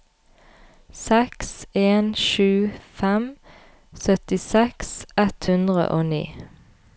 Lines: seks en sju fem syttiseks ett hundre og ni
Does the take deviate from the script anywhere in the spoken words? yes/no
no